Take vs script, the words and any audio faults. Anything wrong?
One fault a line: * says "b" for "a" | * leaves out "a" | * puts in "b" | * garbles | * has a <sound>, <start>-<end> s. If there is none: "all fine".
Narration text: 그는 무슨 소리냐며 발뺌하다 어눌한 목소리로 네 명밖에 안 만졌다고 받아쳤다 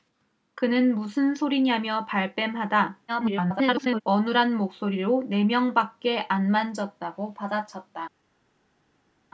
* garbles